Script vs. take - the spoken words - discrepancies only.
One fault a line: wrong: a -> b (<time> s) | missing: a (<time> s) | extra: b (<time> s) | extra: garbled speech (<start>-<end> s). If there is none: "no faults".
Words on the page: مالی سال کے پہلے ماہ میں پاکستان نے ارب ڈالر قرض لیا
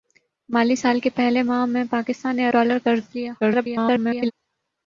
missing: ارب (2.5 s)
extra: garbled speech (3.4-4.3 s)